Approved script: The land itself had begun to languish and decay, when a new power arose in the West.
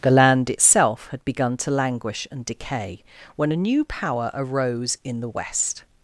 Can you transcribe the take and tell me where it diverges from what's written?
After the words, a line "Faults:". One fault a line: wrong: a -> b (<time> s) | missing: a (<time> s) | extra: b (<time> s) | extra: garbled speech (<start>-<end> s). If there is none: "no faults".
The land itself had begun to languish and decay, when a new power arose in the West.
Faults:
no faults